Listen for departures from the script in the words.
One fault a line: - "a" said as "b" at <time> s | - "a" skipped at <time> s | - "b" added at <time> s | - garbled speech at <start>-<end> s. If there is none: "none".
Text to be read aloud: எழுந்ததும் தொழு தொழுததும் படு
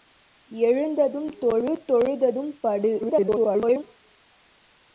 - garbled speech at 3.0-3.8 s